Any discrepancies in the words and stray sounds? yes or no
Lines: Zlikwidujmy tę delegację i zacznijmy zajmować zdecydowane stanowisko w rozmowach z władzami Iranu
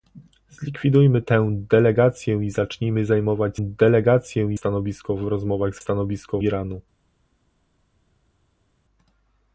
yes